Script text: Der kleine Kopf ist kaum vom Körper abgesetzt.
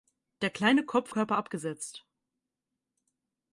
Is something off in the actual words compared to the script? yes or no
yes